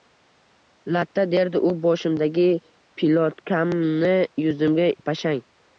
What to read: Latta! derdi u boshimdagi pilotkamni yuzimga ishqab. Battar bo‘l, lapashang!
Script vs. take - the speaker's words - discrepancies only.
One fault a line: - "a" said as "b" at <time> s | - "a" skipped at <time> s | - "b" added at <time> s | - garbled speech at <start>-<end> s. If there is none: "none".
- "ishqab Battar bo‘l" skipped at 4.9 s